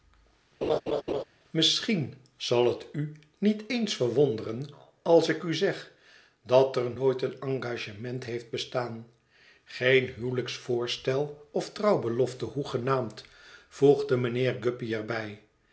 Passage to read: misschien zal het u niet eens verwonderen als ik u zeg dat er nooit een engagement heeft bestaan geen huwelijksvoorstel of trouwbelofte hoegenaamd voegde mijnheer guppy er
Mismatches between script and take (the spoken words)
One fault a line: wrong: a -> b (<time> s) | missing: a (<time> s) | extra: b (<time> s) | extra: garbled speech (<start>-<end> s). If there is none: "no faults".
no faults